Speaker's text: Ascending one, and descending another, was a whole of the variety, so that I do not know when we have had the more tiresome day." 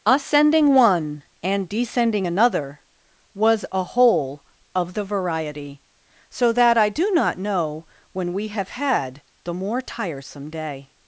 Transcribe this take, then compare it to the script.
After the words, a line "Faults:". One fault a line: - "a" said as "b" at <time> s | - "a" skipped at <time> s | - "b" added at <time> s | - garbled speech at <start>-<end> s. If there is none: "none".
Ascending one, and descending another, was a whole of the variety, so that I do not know when we have had the more tiresome day."
Faults:
none